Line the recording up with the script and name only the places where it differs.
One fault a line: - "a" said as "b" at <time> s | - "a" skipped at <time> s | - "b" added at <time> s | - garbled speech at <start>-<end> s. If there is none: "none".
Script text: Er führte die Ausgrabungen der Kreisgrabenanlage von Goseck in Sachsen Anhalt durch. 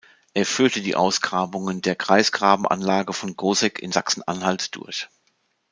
none